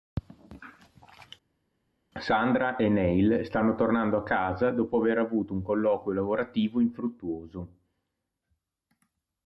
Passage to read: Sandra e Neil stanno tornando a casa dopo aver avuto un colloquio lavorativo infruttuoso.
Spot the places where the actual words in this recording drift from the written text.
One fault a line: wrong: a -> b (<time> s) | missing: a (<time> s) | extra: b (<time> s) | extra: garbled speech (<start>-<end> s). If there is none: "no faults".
no faults